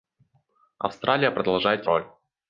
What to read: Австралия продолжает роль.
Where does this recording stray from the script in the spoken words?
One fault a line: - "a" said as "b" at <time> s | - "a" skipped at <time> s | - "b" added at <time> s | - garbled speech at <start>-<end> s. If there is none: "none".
none